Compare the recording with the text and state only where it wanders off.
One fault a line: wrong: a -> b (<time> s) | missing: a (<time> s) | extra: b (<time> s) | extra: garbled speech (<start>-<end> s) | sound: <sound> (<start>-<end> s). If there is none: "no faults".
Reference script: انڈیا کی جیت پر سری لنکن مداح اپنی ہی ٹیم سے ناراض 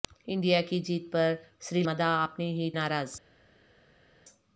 missing: لنکن (1.8 s)
missing: ٹیم سے (2.7 s)